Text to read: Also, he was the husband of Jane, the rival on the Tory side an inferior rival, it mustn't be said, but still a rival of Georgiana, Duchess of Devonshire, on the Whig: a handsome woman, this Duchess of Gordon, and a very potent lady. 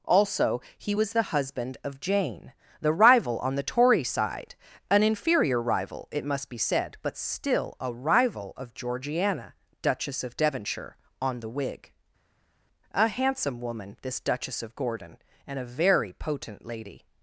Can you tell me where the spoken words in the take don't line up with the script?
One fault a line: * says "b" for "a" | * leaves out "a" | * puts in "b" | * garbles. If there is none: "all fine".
* says "must" for "mustn't"